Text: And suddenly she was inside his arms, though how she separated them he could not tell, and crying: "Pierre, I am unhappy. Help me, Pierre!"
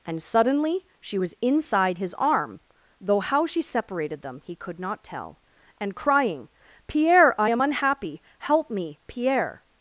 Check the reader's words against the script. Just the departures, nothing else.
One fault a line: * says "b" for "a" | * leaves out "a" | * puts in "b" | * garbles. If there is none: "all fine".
* says "arm" for "arms"